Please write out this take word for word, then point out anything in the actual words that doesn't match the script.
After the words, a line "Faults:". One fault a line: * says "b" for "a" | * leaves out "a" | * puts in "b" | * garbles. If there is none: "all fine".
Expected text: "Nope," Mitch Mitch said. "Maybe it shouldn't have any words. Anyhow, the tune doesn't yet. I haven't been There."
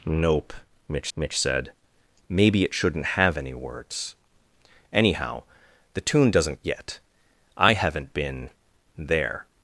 "Nope," Mitch Mitch said. "Maybe it shouldn't have any words. Anyhow, the tune doesn't yet. I haven't been There."
Faults:
all fine